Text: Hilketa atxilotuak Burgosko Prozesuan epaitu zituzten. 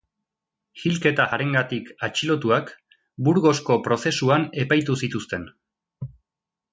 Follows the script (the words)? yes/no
no